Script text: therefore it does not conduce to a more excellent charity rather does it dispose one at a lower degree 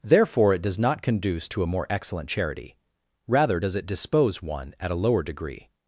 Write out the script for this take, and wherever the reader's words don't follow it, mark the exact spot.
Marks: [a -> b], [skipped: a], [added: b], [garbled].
therefore it does not conduce to a more excellent charity rather does it dispose one at a lower degree